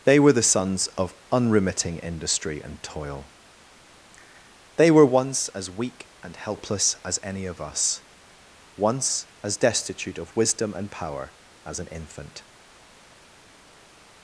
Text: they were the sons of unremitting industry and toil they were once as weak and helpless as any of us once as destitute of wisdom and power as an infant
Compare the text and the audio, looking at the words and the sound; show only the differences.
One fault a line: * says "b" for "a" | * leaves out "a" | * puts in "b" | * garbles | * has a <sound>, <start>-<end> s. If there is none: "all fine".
all fine